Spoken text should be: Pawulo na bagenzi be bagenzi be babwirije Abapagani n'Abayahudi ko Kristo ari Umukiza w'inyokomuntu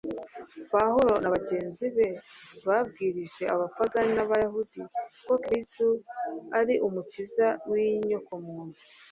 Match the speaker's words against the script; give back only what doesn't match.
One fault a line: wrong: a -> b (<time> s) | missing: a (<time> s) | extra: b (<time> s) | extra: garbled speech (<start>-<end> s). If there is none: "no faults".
missing: bagenzi be (2.1 s)